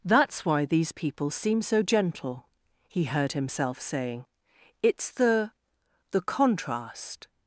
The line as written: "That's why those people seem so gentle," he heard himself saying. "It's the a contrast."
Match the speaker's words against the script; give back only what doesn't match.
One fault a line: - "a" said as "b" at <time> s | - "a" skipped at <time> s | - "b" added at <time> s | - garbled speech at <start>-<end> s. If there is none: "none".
- "those" said as "these" at 0.7 s
- "a" said as "the" at 6.1 s